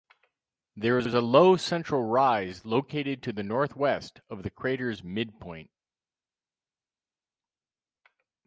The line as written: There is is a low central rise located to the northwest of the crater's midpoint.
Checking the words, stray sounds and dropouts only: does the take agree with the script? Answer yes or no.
yes